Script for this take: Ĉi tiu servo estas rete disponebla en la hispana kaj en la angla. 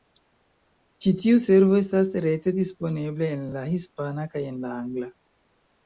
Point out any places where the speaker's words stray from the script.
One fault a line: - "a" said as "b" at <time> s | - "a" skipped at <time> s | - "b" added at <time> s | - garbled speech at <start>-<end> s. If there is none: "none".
none